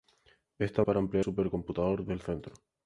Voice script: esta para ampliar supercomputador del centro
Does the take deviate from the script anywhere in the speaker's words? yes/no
no